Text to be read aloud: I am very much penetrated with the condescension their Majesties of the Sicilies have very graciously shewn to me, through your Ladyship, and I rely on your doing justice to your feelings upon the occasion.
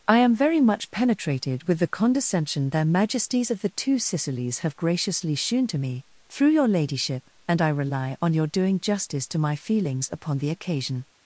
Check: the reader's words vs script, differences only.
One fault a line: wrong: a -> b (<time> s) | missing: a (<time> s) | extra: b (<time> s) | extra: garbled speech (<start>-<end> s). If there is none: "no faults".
extra: Two (3.7 s)
missing: very (4.8 s)
wrong: your -> my (9.4 s)